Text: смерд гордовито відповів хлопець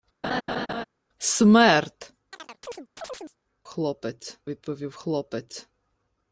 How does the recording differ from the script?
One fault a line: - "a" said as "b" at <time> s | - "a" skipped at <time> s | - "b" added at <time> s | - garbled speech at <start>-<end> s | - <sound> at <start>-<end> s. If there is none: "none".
- laugh at 0.2-0.8 s
- chirp at 2.3-3.4 s
- "гордовито" said as "хлопець" at 3.6 s